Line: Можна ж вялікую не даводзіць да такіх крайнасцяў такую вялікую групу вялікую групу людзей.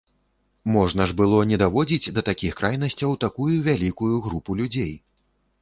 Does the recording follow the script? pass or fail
fail